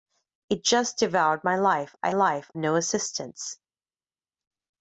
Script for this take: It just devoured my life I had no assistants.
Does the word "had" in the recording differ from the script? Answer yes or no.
yes